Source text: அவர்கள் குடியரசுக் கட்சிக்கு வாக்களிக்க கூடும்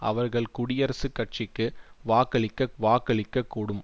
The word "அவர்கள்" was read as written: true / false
true